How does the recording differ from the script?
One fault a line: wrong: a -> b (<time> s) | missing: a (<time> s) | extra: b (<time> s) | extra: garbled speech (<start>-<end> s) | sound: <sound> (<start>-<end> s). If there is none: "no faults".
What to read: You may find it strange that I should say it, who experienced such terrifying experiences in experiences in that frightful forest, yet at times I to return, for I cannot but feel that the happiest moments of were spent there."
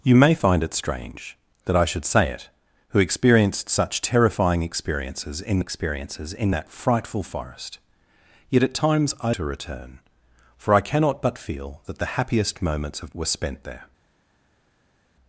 no faults